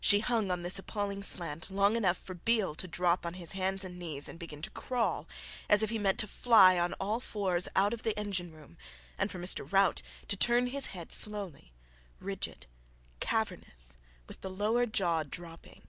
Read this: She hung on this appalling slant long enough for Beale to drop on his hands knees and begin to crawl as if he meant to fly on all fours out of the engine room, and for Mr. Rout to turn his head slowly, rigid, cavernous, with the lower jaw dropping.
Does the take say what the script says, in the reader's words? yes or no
no